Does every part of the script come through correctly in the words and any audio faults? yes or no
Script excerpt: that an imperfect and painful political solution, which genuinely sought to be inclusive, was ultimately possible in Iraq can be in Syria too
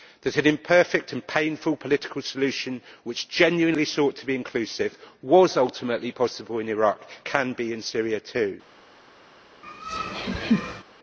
no